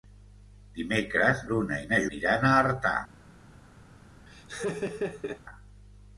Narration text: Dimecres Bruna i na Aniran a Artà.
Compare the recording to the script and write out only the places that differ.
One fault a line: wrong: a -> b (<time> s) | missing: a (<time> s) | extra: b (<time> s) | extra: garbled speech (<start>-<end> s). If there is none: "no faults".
no faults